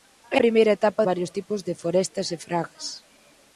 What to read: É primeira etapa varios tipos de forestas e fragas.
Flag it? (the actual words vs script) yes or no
no